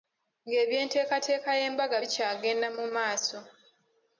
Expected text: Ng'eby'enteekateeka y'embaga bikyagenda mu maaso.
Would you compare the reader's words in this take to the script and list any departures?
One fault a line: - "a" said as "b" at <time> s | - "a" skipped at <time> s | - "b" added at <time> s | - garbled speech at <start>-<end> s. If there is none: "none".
none